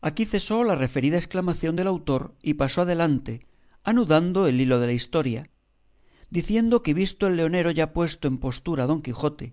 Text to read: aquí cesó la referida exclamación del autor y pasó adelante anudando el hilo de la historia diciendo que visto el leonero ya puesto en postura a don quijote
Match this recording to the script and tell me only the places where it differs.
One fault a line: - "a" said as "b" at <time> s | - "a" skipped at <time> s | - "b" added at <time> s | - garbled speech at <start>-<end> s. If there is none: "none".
none